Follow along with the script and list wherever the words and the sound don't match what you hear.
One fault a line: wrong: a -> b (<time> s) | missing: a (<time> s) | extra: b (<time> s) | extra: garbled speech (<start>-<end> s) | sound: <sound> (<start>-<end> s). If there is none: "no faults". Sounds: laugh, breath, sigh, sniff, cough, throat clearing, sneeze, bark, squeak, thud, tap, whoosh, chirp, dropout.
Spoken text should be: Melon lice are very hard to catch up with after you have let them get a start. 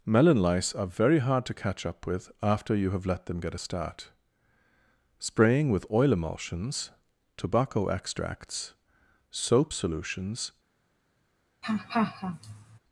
extra: Spraying with oil emulsions tobacco extracts soap solutions (5.2 s)
sound: laugh (11.6-12.8 s)